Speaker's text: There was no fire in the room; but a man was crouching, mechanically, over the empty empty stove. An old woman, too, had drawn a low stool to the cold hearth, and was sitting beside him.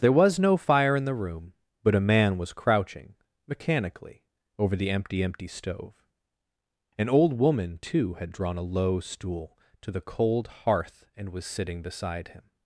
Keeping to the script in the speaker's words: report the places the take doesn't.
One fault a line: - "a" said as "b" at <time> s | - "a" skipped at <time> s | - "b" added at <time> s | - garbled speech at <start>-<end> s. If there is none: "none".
none